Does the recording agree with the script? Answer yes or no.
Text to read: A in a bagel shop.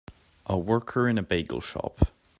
no